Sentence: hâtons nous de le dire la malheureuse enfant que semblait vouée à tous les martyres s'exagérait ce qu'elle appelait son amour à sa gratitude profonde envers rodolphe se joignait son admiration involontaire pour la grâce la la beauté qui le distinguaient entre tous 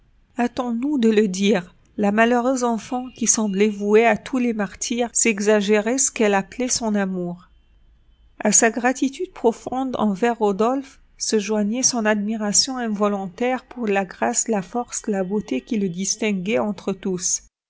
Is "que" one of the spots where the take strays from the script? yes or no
yes